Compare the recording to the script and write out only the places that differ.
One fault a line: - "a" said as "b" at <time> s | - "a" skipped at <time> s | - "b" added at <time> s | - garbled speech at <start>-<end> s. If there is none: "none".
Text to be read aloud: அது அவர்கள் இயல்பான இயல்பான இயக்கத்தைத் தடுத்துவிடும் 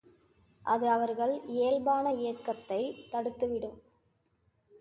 - "இயல்பான" skipped at 2.1 s